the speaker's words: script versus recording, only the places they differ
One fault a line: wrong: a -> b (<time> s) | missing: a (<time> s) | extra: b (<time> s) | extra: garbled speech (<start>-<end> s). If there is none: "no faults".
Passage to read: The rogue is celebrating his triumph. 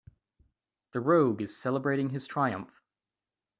no faults